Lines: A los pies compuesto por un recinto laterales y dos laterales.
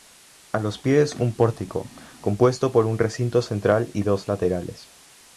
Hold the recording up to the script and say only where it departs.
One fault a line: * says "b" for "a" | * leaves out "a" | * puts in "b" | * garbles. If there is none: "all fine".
* puts in "un pórtico"
* says "central" for "laterales"